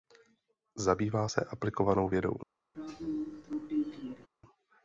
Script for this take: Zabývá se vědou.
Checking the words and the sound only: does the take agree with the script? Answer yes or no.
no